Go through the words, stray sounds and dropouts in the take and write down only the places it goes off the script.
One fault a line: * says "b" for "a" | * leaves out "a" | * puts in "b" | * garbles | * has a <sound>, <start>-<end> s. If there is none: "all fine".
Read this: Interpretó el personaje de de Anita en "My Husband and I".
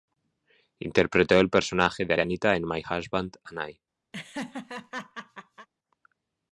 * has a laugh, 4.1-5.7 s